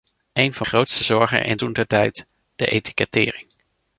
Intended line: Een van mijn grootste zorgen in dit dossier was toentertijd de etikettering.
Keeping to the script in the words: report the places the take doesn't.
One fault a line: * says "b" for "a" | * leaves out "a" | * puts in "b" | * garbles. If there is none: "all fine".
* leaves out "mijn"
* leaves out "dit dossier was"